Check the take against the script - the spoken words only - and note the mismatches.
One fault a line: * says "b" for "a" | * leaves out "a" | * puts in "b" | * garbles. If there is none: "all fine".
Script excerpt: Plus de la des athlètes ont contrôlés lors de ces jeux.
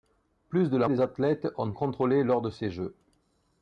all fine